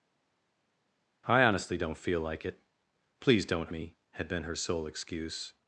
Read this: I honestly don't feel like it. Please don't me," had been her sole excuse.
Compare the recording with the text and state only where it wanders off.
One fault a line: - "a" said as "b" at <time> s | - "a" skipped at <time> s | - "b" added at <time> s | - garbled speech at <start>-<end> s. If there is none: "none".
none